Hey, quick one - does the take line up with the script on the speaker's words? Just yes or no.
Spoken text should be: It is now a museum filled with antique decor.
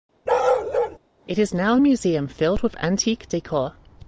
yes